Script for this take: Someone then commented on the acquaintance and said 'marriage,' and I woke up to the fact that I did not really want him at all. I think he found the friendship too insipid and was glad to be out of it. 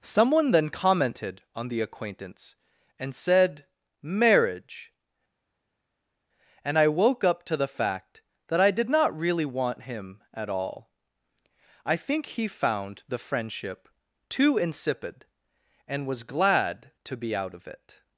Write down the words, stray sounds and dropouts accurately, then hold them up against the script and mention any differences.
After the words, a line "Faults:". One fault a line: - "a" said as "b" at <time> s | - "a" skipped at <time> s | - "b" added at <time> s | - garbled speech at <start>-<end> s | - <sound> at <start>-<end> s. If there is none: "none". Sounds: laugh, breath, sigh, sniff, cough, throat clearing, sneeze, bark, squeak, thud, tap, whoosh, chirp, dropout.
Someone then commented on the acquaintance and said 'marriage,' and I woke up to the fact that I did not really want him at all. I think he found the friendship too insipid and was glad to be out of it.
Faults:
none